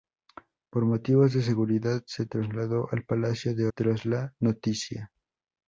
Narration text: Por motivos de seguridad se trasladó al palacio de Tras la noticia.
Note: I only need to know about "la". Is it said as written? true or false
true